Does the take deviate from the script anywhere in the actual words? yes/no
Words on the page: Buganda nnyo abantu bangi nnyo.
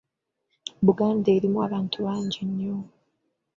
yes